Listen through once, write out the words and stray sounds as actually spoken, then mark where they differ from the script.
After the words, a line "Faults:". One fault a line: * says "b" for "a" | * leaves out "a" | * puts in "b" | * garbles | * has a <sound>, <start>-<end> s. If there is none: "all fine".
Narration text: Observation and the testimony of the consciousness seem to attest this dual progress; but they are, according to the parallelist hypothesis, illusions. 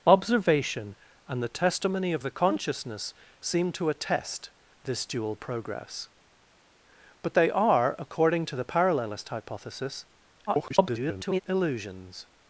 Observation and the testimony of the consciousness seem to attest this dual progress; but they are, according to the parallelist hypothesis, [garbled] illusions.
Faults:
* garbles